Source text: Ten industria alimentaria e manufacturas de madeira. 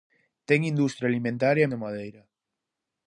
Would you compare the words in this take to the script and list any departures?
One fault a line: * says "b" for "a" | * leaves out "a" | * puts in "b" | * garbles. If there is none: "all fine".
* leaves out "manufacturas"